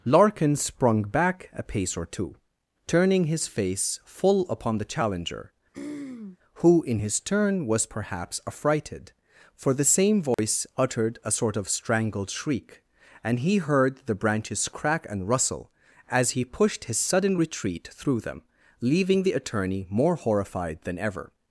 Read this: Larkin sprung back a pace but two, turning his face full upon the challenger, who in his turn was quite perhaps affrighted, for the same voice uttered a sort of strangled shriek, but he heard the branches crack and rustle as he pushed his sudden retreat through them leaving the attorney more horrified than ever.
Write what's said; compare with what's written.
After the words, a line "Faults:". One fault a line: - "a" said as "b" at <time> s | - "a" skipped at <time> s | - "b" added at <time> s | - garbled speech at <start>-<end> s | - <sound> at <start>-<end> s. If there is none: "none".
Larkin sprung back a pace or two, turning his face full upon the challenger, who in his turn was perhaps affrighted, for the same voice uttered a sort of strangled shriek, and he heard the branches crack and rustle as he pushed his sudden retreat through them leaving the attorney more horrified than ever.
Faults:
- "but" said as "or" at 1.9 s
- throat clearing at 5.7-6.4 s
- "quite" skipped at 7.9 s
- dropout at 10.3-10.4 s
- "but" said as "and" at 13.2 s